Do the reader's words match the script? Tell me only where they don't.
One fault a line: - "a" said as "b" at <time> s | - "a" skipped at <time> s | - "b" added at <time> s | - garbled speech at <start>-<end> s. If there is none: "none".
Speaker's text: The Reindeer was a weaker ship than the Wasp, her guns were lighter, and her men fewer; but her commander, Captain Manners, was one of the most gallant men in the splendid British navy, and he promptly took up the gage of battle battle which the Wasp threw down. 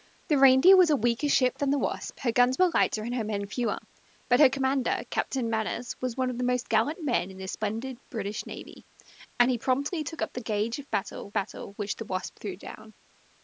none